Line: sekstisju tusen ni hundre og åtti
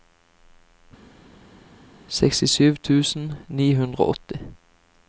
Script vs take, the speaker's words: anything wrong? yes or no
no